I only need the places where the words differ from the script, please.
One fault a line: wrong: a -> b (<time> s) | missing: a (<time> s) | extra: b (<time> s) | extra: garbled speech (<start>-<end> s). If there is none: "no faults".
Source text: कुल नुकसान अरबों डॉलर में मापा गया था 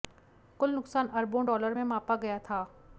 no faults